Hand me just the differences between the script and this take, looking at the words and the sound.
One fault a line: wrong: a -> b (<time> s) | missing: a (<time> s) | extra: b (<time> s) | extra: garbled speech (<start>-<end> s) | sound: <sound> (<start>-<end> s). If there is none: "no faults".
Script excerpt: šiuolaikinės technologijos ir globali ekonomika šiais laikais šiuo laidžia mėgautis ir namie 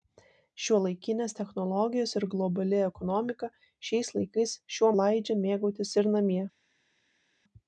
no faults